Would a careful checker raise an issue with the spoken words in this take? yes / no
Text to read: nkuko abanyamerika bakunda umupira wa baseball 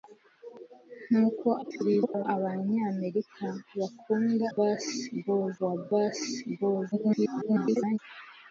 yes